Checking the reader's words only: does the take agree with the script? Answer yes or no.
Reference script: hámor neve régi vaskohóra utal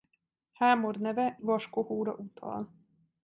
no